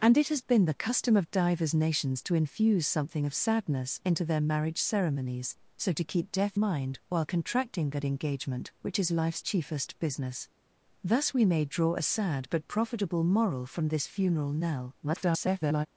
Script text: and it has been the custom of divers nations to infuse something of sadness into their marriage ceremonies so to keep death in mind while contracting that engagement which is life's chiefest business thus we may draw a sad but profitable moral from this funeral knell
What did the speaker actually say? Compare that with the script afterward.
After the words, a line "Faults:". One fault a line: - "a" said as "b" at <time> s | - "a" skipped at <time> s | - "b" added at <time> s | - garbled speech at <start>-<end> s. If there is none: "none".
and it has been the custom of divers nations to infuse something of sadness into their marriage ceremonies so to keep death mind while contracting that engagement which is life's chiefest business thus we may draw a sad but profitable moral from this funeral knell [garbled]
Faults:
- "in" skipped at 6.6 s
- garbled speech at 15.0-15.9 s